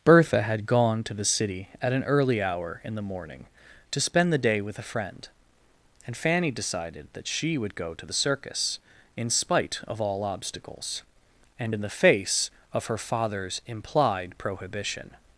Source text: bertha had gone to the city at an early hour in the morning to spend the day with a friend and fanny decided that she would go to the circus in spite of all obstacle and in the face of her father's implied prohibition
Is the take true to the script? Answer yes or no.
no